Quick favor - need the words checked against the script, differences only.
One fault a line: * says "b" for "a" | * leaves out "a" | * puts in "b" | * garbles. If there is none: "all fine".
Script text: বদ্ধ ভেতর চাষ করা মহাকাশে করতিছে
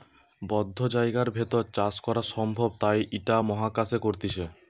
* puts in "জায়গার"
* puts in "সম্ভব তাই ইটা"